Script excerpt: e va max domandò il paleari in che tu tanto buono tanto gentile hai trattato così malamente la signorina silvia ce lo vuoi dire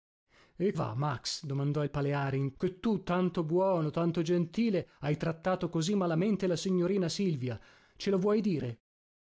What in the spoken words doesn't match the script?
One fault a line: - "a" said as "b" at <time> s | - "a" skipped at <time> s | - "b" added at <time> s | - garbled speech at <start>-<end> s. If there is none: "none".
none